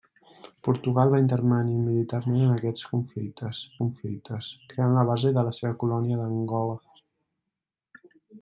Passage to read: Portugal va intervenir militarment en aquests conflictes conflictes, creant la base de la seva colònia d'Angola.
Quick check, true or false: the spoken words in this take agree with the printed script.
true